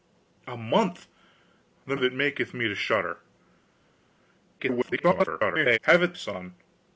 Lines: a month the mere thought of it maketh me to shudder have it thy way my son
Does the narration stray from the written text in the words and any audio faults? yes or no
yes